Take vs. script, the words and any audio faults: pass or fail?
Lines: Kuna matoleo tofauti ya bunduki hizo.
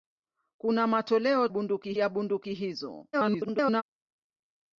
fail